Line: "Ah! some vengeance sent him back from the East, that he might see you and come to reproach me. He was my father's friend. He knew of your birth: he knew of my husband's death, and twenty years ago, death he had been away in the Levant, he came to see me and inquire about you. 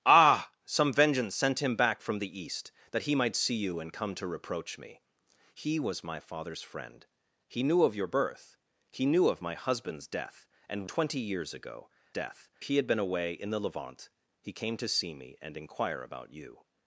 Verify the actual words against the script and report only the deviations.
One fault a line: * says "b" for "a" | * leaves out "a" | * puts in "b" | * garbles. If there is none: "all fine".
all fine